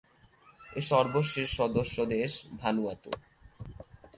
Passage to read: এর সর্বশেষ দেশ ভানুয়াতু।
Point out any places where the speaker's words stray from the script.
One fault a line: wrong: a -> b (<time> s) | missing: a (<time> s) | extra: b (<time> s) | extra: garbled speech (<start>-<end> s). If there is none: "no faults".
extra: সদস্য (1.6 s)